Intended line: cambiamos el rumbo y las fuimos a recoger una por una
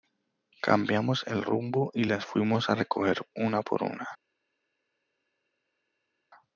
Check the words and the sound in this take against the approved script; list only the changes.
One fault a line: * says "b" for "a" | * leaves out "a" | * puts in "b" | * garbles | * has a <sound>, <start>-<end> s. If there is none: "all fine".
all fine